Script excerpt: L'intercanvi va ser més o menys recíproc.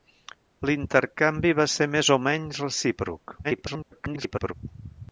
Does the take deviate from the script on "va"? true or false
false